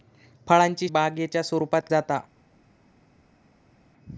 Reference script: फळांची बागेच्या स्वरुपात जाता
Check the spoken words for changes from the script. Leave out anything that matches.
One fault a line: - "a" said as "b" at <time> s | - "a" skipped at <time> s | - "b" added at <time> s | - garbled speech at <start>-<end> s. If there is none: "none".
none